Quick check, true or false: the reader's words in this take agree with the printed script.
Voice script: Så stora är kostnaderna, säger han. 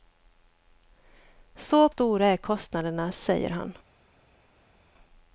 true